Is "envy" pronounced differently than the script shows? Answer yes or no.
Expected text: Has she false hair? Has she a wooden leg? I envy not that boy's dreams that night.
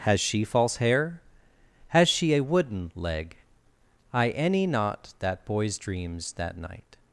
yes